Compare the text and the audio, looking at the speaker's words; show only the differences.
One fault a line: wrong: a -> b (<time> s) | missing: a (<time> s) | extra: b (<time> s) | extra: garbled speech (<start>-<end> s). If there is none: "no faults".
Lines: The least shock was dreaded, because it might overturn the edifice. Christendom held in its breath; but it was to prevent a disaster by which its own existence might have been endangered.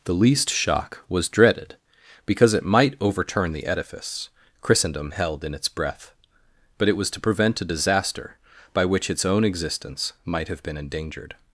no faults